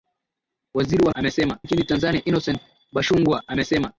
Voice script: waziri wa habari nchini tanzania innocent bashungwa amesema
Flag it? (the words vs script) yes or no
yes